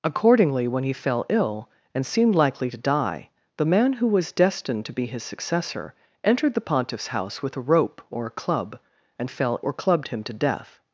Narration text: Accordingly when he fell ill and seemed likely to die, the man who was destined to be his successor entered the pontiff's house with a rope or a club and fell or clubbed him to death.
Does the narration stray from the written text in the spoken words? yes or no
no